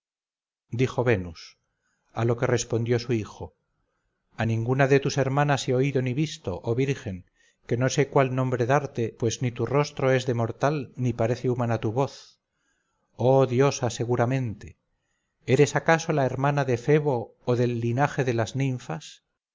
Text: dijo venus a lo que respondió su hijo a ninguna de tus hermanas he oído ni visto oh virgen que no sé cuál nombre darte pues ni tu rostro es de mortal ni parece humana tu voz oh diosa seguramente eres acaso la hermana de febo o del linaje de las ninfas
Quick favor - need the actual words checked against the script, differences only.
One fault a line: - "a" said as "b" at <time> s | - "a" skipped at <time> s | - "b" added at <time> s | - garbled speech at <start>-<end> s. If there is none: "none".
none